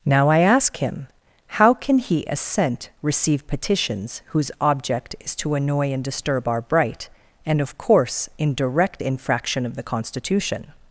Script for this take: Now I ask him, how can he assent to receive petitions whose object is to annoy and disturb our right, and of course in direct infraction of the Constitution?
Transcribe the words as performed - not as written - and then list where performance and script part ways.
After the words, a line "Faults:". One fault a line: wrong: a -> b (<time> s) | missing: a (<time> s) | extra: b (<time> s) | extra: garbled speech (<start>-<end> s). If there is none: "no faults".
Now I ask him, how can he assent receive petitions whose object is to annoy and disturb our bright, and of course in direct infraction of the Constitution?
Faults:
missing: to (2.9 s)
wrong: right -> bright (6.6 s)